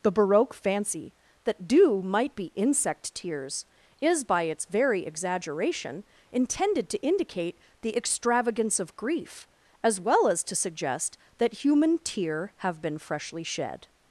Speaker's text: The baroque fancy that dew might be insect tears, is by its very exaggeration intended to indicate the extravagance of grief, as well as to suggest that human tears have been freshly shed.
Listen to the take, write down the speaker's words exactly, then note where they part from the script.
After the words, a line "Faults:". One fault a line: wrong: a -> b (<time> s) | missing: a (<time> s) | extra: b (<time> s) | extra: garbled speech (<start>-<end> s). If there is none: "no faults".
The baroque fancy that dew might be insect tears, is by its very exaggeration intended to indicate the extravagance of grief, as well as to suggest that human tear have been freshly shed.
Faults:
wrong: tears -> tear (12.0 s)